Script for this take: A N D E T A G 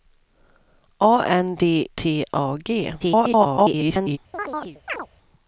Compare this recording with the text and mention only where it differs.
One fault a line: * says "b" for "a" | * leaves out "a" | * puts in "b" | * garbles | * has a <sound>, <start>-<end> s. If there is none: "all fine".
* leaves out "E"
* garbles
* has a chirp, 4.3-5.1 s